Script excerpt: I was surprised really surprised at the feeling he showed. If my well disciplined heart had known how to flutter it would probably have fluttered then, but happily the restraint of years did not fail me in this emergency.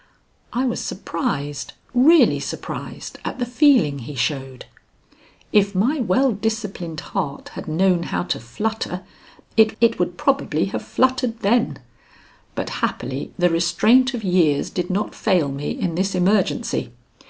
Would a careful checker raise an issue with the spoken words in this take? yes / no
yes